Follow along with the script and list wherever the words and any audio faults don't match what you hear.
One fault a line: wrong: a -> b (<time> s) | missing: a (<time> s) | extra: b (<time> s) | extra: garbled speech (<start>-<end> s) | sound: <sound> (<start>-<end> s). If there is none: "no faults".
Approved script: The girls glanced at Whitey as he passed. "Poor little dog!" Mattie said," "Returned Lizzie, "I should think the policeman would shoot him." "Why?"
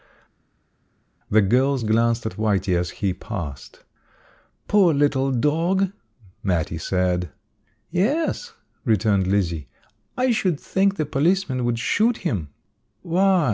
extra: Yes (7.9 s)